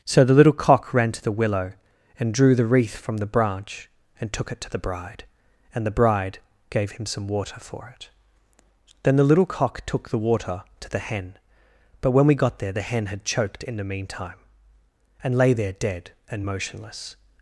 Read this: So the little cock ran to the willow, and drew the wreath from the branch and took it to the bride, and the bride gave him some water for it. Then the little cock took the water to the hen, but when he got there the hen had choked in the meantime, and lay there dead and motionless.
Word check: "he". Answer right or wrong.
wrong